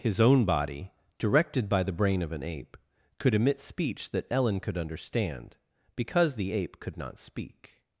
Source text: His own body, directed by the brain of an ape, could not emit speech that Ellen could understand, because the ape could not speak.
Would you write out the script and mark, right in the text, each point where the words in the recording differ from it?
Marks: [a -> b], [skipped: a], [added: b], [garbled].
His own body, directed by the brain of an ape, could [skipped: not] emit speech that Ellen could understand, because the ape could not speak.